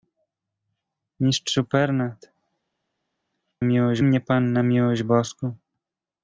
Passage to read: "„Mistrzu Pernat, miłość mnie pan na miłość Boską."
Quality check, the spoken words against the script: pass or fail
pass